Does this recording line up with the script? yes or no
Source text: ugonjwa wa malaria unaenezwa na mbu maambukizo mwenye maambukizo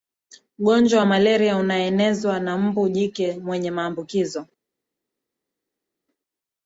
no